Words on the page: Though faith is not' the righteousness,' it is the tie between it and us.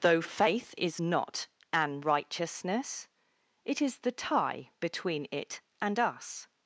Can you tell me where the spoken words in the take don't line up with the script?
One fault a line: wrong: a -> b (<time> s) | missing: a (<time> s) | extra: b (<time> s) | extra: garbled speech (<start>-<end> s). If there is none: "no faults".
wrong: the -> an (1.7 s)